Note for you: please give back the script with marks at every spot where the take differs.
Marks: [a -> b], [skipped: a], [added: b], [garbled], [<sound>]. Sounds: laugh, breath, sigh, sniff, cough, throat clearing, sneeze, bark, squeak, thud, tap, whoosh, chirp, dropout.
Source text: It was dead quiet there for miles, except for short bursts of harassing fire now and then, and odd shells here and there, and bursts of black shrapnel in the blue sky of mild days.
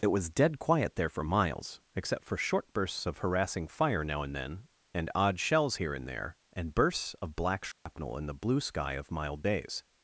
It was dead quiet there for miles, except for short bursts of harassing fire now and then, and odd shells here and there, and bursts of black shrapnel [dropout] in the blue sky of mild days.